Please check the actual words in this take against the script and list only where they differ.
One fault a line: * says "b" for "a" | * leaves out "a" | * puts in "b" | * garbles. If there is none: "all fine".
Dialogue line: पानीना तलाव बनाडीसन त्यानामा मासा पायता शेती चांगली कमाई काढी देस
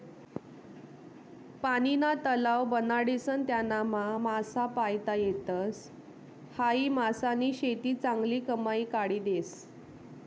* puts in "येतस हायी मासानी"